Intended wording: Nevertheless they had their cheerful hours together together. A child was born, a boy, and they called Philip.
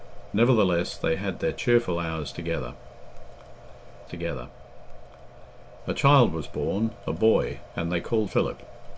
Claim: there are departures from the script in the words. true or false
false